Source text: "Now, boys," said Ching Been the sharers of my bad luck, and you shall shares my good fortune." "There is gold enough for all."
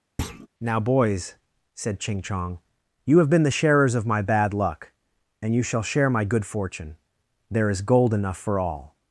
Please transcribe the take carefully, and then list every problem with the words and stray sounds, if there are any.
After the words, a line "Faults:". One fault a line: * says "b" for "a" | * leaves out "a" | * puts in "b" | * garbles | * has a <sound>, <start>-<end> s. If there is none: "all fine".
"Now, boys," said Ching Chong, "you have been the sharers of my bad luck, and you shall share my good fortune." "There is gold enough for all."
Faults:
* has a thud, 0.2-0.5 s
* puts in "Chong you have"
* says "share" for "shares"